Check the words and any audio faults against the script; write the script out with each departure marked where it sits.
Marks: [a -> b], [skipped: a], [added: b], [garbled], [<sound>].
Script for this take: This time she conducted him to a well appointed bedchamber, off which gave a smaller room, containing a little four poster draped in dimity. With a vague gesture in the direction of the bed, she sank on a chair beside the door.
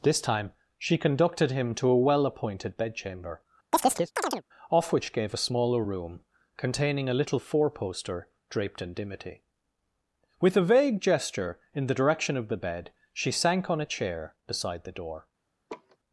This time she conducted him to a well appointed bedchamber, [chirp] off which gave a smaller room, containing a little four poster draped in dimity. With a vague gesture in the direction of the bed, she sank on a chair beside the door. [laugh]